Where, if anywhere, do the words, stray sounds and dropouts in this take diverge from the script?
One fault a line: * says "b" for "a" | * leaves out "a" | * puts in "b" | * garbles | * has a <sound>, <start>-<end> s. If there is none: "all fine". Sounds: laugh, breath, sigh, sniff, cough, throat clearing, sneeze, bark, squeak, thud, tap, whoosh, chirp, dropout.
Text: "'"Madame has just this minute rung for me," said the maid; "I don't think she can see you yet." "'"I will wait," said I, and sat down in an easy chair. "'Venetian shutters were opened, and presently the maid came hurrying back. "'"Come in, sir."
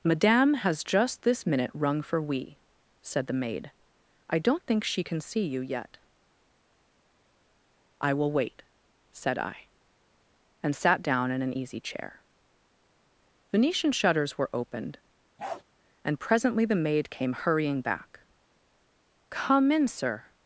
* says "we" for "me"
* has a bark, 15.4-15.6 s